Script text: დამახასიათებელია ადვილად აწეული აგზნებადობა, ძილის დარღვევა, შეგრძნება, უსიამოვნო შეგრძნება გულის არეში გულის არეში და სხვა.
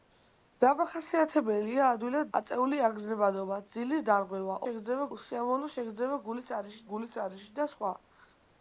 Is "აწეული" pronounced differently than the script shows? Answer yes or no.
no